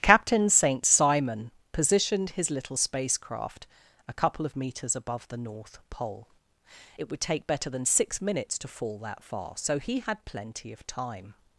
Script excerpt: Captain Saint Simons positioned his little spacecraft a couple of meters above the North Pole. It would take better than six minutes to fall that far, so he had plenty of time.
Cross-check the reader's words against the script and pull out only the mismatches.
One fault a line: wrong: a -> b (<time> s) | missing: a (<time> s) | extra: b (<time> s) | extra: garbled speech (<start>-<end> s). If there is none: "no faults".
wrong: Simons -> Simon (0.8 s)